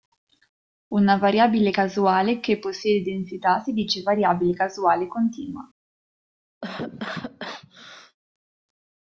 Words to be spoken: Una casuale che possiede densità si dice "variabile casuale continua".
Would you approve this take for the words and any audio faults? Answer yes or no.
no